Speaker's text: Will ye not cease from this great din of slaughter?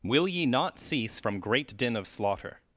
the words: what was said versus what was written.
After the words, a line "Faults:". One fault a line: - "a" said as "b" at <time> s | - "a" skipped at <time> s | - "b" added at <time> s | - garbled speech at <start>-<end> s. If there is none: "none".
Will ye not cease from great din of slaughter?
Faults:
- "this" skipped at 1.4 s